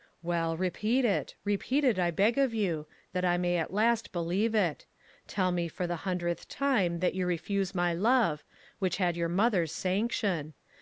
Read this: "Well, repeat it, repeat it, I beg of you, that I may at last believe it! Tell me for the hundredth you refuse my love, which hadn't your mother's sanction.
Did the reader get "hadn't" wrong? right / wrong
wrong